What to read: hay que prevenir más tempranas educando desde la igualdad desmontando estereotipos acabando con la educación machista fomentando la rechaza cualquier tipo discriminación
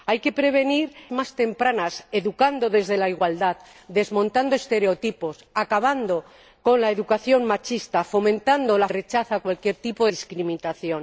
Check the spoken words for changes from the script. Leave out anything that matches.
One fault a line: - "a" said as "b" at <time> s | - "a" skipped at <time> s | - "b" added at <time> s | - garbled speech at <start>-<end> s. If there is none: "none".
none